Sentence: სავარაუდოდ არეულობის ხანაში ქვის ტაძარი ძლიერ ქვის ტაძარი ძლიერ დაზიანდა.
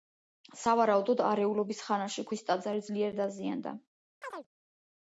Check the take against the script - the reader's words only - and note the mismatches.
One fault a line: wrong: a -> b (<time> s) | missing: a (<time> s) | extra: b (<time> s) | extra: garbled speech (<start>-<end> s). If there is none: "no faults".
missing: ქვის ტაძარი ძლიერ (3.2 s)